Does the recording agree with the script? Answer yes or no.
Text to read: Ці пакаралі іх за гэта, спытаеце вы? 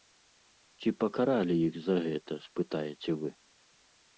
yes